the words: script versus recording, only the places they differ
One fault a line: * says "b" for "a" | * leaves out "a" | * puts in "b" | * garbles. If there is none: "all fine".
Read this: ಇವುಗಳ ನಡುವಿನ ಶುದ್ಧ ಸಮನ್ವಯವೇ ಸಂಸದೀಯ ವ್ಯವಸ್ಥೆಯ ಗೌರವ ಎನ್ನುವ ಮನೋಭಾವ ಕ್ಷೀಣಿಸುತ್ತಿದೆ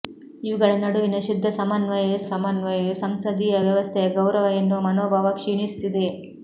* puts in "ಸಮನ್ವಯವೇ"